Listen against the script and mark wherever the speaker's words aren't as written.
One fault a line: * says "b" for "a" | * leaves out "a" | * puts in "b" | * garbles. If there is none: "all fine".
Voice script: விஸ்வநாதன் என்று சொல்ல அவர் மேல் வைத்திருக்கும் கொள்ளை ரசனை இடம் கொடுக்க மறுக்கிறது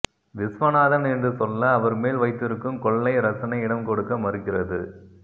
all fine